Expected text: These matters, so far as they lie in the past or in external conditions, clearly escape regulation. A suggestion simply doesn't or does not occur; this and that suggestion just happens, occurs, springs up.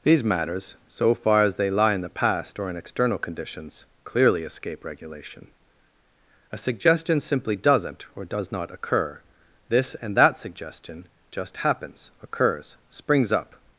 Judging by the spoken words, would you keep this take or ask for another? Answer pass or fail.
pass